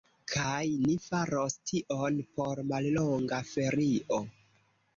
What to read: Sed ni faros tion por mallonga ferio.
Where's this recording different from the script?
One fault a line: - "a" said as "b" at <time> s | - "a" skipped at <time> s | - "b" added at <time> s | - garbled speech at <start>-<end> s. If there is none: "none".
- "Sed" said as "Kaj" at 0.3 s